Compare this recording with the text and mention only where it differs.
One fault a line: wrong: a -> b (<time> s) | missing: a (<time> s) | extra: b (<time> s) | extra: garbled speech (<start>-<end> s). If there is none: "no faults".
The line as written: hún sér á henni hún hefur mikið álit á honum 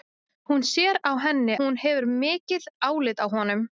no faults